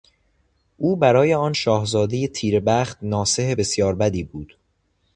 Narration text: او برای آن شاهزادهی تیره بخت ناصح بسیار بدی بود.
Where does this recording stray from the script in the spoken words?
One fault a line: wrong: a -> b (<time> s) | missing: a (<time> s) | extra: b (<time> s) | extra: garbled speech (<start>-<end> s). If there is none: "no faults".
no faults